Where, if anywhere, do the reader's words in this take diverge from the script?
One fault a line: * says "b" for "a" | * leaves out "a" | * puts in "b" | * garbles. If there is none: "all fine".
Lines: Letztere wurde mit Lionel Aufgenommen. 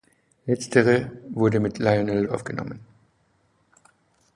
all fine